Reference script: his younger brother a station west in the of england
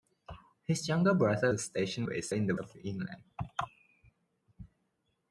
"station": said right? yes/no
yes